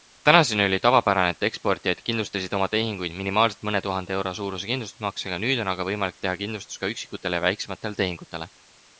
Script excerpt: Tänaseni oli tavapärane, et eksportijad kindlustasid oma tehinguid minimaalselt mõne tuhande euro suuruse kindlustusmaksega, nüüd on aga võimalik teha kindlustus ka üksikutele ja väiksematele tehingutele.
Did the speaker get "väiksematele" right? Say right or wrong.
right